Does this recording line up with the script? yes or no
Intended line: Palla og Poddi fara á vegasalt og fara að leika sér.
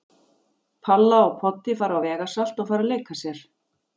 yes